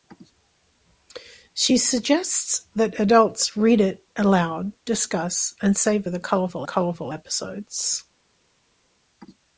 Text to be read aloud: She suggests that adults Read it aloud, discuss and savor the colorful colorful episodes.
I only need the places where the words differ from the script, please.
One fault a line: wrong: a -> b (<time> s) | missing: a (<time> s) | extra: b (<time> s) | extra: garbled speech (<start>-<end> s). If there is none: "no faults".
no faults